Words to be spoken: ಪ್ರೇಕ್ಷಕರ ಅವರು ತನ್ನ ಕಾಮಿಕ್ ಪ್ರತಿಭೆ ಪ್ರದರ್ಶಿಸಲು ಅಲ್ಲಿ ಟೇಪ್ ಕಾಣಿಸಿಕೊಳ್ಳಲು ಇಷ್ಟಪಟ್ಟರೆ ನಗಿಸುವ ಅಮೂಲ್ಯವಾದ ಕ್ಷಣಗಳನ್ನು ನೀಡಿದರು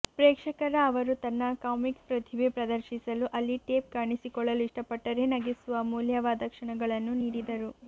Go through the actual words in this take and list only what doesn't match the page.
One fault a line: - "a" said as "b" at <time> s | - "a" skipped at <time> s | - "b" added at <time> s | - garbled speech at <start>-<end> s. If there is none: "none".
none